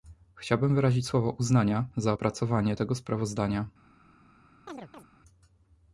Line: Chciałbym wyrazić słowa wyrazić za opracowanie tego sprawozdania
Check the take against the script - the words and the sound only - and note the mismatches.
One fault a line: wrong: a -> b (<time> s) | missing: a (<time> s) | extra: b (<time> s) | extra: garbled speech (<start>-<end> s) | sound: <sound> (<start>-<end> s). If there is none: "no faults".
wrong: wyrazić -> uznania (1.3 s)
sound: chirp (4.7-5.1 s)